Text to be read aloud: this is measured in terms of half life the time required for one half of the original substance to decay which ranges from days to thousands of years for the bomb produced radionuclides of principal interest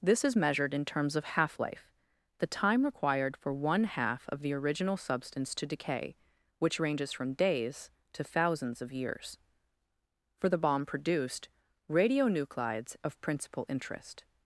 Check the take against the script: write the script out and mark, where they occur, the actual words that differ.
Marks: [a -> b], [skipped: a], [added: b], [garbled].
this is measured in terms of half life the time required for one half of the original substance to decay which ranges from days to thousands of years for the bomb produced radionuclides of principal interest